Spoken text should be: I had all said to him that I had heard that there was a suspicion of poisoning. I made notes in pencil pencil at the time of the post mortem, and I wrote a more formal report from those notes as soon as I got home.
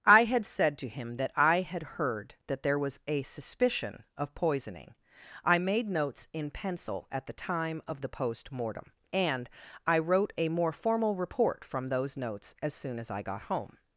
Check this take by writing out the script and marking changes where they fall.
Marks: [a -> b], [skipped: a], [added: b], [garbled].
I had [skipped: all] said to him that I had heard that there was a suspicion of poisoning. I made notes in pencil [skipped: pencil] at the time of the post mortem, and I wrote a more formal report from those notes as soon as I got home.